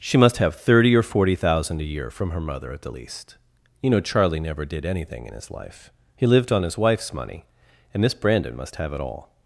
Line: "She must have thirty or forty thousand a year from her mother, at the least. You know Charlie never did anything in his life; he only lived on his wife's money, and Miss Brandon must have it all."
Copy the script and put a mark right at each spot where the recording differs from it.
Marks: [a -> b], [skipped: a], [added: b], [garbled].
"She must have thirty or forty thousand a year from her mother, at the least. You know Charlie never did anything in his life; he [skipped: only] lived on his wife's money, and Miss Brandon must have it all."